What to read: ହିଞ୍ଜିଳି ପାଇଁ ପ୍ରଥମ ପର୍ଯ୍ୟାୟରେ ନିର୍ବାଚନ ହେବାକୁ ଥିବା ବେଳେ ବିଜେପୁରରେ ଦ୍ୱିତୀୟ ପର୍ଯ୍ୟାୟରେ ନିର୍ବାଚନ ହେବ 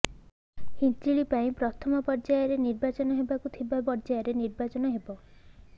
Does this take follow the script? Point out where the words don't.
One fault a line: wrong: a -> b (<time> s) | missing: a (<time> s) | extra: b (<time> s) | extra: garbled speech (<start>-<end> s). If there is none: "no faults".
missing: ବେଳେ ବିଜେପୁରରେ ଦ୍ୱିତୀୟ (3.8 s)